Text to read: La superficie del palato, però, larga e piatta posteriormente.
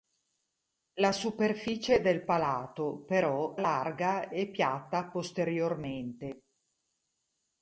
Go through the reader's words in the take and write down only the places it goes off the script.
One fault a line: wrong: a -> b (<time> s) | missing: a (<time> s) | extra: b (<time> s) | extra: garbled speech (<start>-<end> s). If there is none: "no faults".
no faults